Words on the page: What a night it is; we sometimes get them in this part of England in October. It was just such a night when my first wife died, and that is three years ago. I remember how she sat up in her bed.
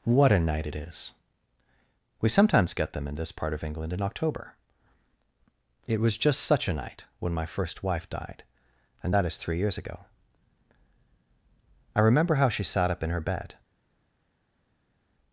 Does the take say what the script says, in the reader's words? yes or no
yes